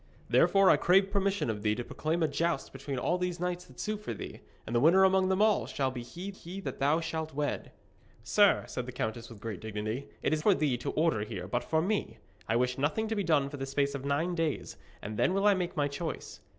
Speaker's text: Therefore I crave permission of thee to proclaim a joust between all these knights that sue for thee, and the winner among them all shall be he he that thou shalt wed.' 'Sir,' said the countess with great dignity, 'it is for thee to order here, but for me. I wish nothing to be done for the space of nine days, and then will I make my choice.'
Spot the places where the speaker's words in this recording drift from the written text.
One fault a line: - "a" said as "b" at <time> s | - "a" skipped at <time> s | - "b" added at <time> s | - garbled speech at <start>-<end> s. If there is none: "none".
none